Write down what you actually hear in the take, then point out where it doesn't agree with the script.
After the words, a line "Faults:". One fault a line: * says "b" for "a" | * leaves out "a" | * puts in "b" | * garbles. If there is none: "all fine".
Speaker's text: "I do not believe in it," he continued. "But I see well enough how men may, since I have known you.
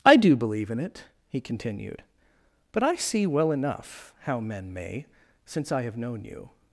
"I do believe in it," he continued. "But I see well enough how men may, since I have known you.
Faults:
* leaves out "not"